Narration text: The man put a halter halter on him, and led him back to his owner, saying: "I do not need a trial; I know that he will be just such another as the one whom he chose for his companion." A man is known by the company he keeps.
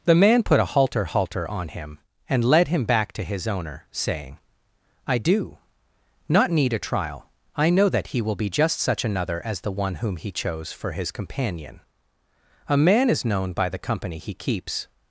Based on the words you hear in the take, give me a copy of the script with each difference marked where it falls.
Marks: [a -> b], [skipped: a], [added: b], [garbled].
The man put a halter halter on him, and led him back to his owner, saying: "I do not need a trial; I know that he will be just such another as the one whom he chose for his companion." A man is known by the company he keeps.